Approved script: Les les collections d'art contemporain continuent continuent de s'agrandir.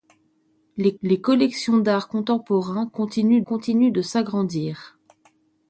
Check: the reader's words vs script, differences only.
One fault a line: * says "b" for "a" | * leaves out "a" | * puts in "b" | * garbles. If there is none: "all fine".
all fine